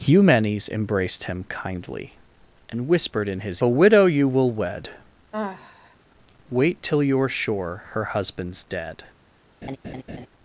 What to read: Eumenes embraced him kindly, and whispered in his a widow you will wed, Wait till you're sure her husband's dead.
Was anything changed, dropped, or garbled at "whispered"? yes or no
no